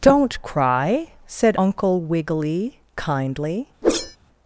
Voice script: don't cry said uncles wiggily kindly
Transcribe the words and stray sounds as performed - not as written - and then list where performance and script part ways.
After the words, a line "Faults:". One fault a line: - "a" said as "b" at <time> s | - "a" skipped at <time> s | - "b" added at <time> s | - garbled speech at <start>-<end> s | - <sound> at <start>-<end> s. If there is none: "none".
don't cry said uncle wiggily kindly
Faults:
- "uncles" said as "uncle" at 1.6 s
- whoosh at 3.8-4.2 s